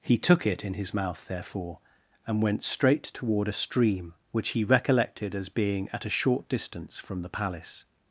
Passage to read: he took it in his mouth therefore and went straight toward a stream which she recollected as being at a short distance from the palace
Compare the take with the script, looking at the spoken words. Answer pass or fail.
fail